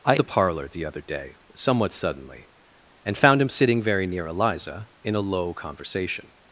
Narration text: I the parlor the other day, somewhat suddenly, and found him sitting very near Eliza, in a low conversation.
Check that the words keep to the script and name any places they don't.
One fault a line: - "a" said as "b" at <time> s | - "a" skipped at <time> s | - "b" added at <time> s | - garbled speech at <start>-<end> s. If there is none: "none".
none